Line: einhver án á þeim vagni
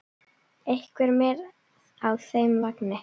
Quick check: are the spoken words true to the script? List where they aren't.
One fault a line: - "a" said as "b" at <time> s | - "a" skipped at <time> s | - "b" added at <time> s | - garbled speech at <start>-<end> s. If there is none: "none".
- "án" said as "með" at 1.2 s